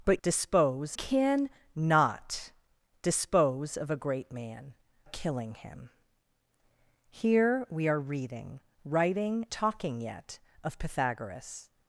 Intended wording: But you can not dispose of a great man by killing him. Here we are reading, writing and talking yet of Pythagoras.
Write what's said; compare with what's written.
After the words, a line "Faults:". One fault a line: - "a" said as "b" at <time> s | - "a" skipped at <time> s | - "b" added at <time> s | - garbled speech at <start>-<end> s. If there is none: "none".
But dispose can not dispose of a great man killing him. Here we are reading, writing talking yet of Pythagoras.
Faults:
- "you" said as "dispose" at 0.2 s
- "by" skipped at 4.7 s
- "and" skipped at 9.5 s